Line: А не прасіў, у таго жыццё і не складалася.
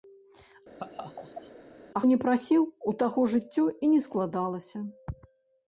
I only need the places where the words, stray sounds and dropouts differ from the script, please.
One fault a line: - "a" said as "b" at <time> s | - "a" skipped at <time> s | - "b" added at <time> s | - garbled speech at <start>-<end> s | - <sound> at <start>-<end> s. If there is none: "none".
- laugh at 0.8-1.5 s